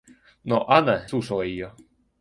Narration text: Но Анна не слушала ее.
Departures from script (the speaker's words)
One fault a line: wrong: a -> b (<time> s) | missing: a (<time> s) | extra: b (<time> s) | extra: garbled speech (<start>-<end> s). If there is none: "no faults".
missing: не (1.1 s)